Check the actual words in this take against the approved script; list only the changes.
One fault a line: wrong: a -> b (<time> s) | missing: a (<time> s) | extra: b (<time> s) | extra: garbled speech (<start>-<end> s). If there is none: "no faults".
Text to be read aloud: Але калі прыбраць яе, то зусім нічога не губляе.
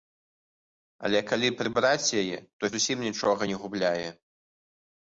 no faults